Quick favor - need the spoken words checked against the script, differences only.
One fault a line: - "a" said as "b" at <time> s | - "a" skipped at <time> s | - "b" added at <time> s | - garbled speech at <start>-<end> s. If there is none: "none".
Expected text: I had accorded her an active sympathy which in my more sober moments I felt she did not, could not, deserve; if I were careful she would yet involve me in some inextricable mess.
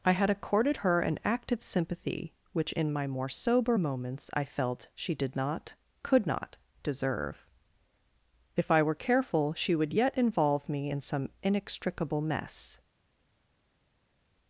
none